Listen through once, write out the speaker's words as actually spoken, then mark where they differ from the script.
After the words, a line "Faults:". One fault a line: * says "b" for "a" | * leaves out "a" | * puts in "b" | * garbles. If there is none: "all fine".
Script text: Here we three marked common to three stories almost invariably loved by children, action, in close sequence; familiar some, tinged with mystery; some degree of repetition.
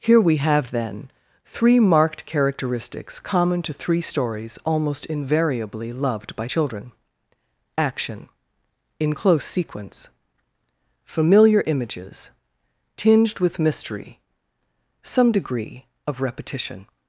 Here we have, then, three marked characteristics common to three stories almost invariably loved by children, action, in close sequence; familiar images, tinged with mystery; some degree of repetition.
Faults:
* puts in "have then"
* puts in "characteristics"
* says "images" for "some"